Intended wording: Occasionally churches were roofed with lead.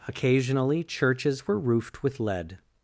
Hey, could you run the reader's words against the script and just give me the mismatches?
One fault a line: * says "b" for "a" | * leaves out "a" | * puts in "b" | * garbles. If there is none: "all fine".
all fine